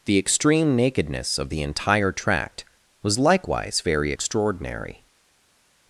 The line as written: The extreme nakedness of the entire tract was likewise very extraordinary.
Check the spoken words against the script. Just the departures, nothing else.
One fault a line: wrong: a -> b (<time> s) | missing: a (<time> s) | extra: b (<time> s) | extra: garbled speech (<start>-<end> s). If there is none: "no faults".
no faults